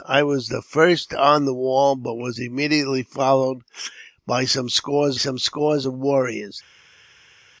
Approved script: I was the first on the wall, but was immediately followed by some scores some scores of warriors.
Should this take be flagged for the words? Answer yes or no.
no